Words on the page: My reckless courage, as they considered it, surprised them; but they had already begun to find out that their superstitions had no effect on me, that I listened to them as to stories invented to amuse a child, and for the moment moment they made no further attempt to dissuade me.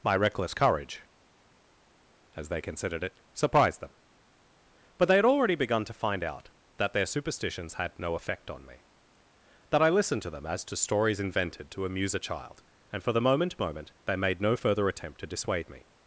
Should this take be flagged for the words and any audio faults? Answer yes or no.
no